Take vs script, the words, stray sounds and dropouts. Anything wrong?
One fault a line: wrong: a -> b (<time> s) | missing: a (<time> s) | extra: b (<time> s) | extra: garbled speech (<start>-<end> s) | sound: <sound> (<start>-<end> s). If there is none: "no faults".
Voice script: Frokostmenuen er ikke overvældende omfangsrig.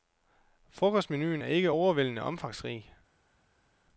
no faults